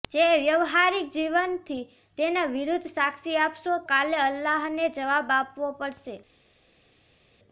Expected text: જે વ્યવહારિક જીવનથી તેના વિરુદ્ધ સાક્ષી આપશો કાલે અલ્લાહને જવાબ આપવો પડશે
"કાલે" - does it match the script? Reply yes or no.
yes